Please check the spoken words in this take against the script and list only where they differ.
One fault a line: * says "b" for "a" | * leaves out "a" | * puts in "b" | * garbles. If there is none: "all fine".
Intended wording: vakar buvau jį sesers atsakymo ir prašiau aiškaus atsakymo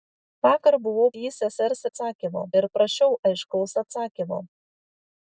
all fine